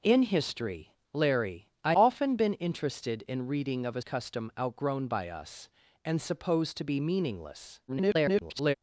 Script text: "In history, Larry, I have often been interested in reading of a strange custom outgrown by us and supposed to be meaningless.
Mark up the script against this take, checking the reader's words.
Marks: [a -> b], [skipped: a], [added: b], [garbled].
"In history, Larry, I [skipped: have] often been interested in reading of a [skipped: strange] custom outgrown by us and supposed to be meaningless. [garbled]